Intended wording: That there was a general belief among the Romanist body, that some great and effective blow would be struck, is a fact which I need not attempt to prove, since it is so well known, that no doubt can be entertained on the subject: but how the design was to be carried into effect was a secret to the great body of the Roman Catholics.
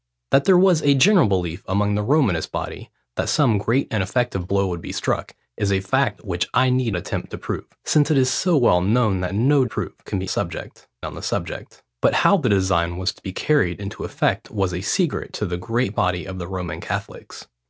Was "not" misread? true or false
true